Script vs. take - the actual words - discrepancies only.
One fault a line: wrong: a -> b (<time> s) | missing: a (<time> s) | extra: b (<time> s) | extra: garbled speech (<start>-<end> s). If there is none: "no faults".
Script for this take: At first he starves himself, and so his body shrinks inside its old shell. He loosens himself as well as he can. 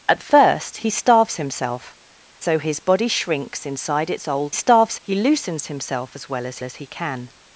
missing: and (1.9 s)
wrong: shell -> starves (4.5 s)
extra: as (6.6 s)